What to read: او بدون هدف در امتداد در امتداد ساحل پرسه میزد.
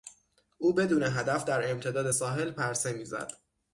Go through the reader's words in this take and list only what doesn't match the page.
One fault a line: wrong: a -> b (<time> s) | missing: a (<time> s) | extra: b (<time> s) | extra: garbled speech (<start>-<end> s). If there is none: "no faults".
missing: در امتداد (2.1 s)